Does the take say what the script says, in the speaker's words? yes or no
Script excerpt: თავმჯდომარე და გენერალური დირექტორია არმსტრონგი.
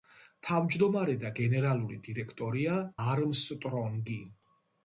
yes